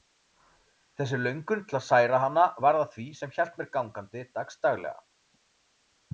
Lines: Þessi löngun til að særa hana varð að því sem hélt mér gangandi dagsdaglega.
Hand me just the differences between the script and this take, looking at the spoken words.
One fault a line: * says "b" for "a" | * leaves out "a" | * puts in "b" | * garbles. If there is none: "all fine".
all fine